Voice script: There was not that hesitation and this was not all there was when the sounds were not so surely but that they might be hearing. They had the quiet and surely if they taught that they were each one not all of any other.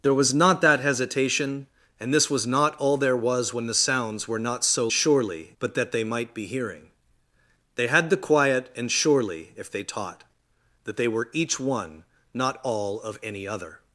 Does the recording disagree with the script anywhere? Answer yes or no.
no